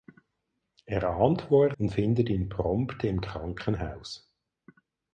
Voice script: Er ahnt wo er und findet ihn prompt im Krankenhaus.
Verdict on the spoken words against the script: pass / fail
pass